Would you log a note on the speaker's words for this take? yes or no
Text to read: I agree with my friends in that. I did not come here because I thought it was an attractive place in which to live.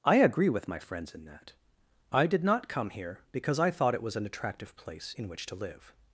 no